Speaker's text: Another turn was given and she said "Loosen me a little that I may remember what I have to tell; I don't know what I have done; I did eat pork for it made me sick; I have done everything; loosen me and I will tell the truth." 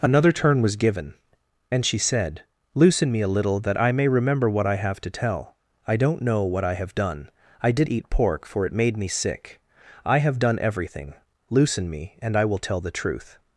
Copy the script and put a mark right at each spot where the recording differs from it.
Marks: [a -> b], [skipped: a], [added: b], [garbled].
Another turn was given and she said "Loosen me a little that I may remember what I have to tell; I don't know what I have done; I did eat pork for it made me sick; I have done everything; loosen me and I will tell the truth."